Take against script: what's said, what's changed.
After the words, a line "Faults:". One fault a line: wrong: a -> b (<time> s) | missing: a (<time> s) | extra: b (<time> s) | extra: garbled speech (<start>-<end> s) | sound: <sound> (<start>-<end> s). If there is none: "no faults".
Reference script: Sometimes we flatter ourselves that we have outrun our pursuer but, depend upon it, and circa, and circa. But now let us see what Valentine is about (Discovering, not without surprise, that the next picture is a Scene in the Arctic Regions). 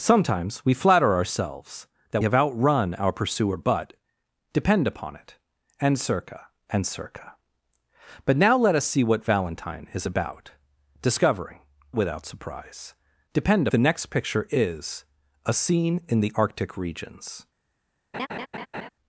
Sometimes we flatter ourselves that have outrun our pursuer but, depend upon it, and circa, and circa. But now let us see what Valentine is about (Discovering, without surprise, depend the next picture is a Scene in the Arctic Regions).
Faults:
missing: we (2.2 s)
missing: not (11.6 s)
wrong: that -> depend (13.3 s)
sound: laugh (18.1-18.9 s)